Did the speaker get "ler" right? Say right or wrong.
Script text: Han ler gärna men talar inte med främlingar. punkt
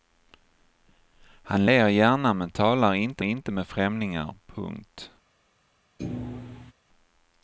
right